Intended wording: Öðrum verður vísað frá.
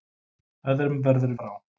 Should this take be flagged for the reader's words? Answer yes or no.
yes